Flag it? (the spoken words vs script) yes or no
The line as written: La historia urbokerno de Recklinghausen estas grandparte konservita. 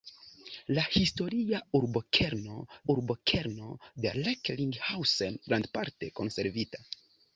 yes